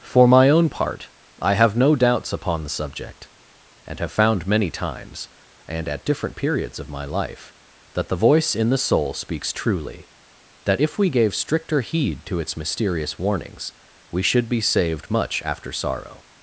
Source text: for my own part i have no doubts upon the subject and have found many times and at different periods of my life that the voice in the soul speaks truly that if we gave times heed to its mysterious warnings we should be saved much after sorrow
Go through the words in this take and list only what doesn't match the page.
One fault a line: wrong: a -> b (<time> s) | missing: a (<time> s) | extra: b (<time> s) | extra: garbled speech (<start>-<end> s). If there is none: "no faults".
wrong: times -> stricter (11.3 s)